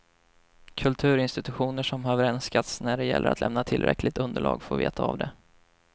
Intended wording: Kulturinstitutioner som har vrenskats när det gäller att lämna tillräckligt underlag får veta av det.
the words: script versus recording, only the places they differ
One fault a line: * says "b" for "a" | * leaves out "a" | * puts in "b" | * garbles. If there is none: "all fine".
all fine